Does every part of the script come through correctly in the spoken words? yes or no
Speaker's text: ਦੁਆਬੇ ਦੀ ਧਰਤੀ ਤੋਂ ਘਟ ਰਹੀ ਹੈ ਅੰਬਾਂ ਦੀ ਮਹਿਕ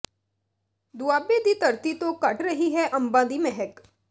yes